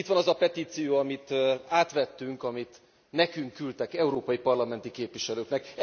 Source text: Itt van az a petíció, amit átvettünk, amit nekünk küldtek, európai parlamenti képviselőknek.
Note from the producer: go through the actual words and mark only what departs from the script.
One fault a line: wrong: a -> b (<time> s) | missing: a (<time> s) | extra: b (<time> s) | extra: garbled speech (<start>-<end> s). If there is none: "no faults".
no faults